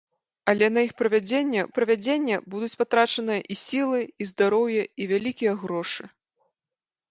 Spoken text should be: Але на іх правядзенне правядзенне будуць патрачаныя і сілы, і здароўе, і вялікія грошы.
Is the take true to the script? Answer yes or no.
yes